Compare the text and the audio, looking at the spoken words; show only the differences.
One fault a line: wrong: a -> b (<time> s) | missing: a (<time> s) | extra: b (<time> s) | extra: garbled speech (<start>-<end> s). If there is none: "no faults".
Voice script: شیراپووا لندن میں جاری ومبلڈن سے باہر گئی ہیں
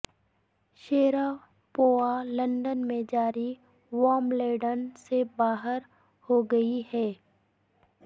extra: ہو (6.3 s)